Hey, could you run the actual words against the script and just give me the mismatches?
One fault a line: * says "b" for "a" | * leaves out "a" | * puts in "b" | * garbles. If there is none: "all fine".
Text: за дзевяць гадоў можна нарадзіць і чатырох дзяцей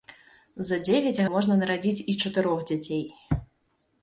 * leaves out "гадоў"